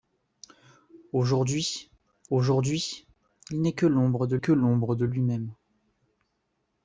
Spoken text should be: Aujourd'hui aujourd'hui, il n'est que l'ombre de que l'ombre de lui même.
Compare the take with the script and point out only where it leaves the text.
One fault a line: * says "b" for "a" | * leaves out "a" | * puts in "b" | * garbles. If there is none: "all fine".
all fine